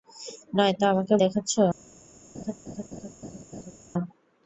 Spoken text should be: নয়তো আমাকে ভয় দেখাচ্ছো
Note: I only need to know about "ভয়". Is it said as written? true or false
false